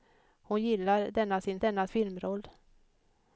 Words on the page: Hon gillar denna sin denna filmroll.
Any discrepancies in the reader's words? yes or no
no